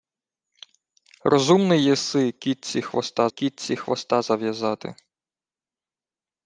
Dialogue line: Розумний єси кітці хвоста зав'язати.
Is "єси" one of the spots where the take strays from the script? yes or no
no